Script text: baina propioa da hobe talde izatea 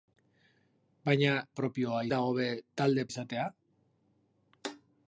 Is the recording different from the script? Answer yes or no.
no